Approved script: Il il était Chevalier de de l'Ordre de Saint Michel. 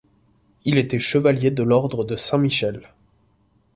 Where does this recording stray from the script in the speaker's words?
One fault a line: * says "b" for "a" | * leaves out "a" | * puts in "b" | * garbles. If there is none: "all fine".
* leaves out "il"
* leaves out "de"